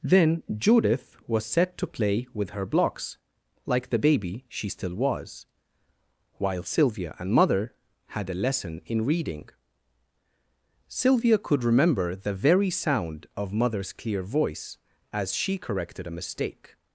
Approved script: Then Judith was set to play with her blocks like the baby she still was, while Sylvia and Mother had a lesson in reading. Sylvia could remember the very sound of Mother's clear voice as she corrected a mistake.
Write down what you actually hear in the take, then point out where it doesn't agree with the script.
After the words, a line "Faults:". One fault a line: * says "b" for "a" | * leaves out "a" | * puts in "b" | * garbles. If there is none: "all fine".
Then Judith was set to play with her blocks like the baby she still was, while Sylvia and Mother had a lesson in reading. Sylvia could remember the very sound of Mother's clear voice as she corrected a mistake.
Faults:
all fine